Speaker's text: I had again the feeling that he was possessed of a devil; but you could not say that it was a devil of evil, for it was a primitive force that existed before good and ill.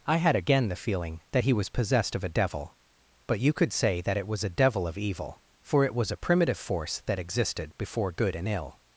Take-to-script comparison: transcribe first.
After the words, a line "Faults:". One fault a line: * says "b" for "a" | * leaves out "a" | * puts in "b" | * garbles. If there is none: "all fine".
I had again the feeling that he was possessed of a devil; but you could say that it was a devil of evil, for it was a primitive force that existed before good and ill.
Faults:
* leaves out "not"